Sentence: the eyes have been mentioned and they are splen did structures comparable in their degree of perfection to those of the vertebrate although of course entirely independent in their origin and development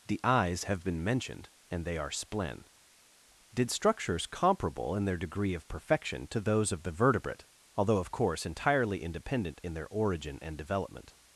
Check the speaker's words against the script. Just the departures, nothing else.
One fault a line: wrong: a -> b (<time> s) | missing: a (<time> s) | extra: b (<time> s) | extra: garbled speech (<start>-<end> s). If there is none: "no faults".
no faults